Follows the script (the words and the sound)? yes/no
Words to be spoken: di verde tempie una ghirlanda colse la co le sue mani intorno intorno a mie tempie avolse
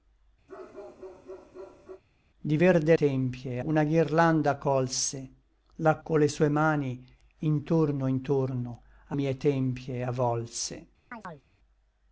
no